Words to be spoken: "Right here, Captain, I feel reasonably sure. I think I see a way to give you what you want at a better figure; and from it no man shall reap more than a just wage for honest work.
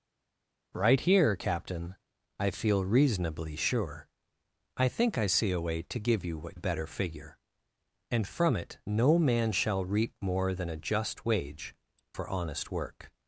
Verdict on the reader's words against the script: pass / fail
fail